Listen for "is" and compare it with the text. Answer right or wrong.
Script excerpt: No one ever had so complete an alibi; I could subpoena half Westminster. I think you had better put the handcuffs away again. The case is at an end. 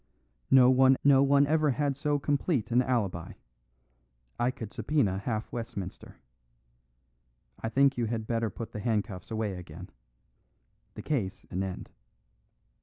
wrong